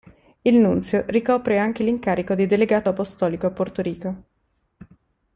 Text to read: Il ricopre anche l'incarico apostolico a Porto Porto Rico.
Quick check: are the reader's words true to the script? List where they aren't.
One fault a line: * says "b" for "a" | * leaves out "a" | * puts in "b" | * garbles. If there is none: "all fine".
* puts in "nunzio"
* puts in "di delegato"
* leaves out "Porto"